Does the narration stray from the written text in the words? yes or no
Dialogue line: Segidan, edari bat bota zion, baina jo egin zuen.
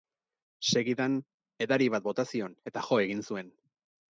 yes